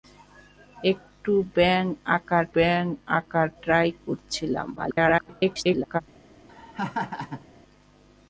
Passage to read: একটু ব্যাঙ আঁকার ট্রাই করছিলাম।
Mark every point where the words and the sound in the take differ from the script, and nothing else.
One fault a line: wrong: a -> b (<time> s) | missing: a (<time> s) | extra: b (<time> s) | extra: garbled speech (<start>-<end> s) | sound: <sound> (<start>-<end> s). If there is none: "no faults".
extra: ব্যাঙ আঁকার (2.5 s)
extra: garbled speech (4.8-6.0 s)
sound: laugh (6.5-7.5 s)